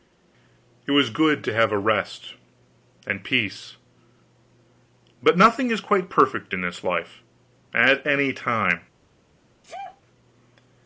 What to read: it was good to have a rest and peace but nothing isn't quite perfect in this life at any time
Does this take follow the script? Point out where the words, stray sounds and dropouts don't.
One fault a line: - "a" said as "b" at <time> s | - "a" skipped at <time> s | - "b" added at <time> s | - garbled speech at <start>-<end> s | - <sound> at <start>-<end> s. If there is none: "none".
- "isn't" said as "is" at 5.7 s
- sneeze at 9.6-10.0 s